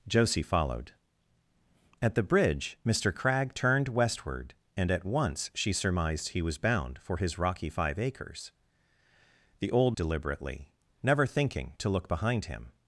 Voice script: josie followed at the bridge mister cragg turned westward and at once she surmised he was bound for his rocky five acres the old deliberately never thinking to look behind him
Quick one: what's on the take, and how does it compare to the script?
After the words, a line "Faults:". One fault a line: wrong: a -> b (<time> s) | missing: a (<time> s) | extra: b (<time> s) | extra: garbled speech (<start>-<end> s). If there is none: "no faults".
josie followed at the bridge mister cragg turned westward and at once she surmised he was bound for his rocky five acres the old deliberately never thinking to look behind him
Faults:
no faults